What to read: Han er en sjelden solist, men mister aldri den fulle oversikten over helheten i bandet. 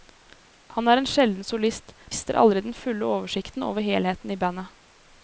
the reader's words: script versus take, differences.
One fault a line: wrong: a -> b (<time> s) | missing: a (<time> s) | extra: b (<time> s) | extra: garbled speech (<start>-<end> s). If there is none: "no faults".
missing: men (1.9 s)